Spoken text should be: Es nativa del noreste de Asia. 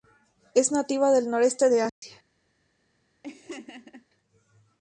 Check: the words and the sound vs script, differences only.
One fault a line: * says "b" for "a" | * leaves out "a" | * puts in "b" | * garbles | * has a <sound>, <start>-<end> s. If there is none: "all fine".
* has a dropout, 1.9-2.0 s
* has a laugh, 3.2-4.1 s